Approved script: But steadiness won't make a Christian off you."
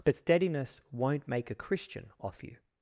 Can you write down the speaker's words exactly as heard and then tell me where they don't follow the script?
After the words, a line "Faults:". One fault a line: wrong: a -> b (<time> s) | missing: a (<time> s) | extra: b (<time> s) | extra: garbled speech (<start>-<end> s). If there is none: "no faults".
But steadiness won't make a Christian off you."
Faults:
no faults